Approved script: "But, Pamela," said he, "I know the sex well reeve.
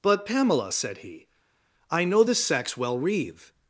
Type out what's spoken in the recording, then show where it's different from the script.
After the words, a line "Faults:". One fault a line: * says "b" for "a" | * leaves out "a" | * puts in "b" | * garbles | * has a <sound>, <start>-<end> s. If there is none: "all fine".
"But, Pamela," said he, "I know the sex well reeve.
Faults:
all fine